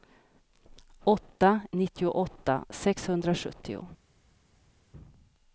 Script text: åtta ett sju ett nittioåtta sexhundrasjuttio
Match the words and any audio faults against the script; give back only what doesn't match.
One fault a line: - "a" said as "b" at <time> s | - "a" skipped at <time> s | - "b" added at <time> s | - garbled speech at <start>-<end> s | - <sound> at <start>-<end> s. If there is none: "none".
- "ett sju ett" skipped at 1.6 s